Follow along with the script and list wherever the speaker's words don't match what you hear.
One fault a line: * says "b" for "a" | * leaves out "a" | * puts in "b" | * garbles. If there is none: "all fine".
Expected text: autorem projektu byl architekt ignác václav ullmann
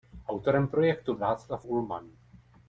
* leaves out "byl architekt ignác"